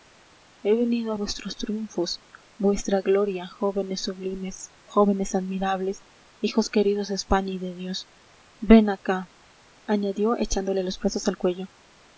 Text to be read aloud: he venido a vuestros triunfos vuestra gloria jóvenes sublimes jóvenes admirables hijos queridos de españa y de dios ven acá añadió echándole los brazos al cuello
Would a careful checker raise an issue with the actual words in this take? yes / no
no